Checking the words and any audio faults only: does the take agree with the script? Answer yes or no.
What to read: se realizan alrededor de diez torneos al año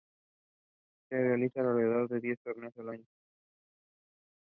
yes